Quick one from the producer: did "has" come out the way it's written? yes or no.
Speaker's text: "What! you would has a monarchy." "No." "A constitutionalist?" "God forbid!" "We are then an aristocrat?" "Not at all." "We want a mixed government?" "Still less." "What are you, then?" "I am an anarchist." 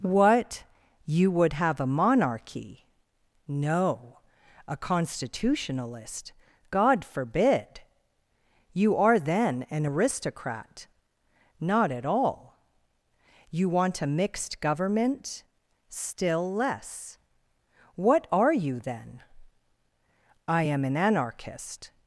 no